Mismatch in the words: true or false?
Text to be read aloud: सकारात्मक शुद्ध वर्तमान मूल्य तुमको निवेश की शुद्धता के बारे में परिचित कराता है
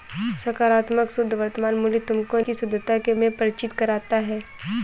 true